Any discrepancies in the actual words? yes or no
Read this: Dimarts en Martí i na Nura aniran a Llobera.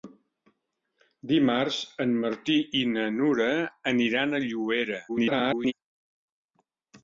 yes